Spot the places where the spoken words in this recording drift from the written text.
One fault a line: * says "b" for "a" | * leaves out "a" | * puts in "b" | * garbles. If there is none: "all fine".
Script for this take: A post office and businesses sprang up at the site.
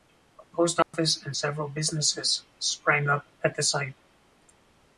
* puts in "several"